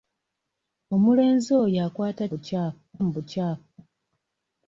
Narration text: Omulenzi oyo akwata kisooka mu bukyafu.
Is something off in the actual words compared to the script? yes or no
yes